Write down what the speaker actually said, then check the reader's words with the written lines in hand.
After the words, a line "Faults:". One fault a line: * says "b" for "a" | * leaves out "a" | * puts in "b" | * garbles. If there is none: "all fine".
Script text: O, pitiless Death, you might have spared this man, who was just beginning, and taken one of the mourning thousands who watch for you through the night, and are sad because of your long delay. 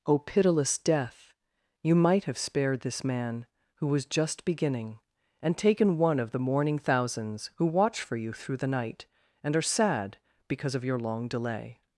O, pitiless Death, you might have spared this man, who was just beginning, and taken one of the mourning thousands who watch for you through the night, and are sad because of your long delay.
Faults:
all fine